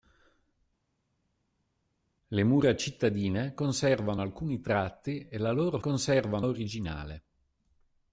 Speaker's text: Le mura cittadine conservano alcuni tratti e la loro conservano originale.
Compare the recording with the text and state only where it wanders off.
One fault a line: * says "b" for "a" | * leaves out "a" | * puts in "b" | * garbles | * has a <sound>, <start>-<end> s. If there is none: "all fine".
all fine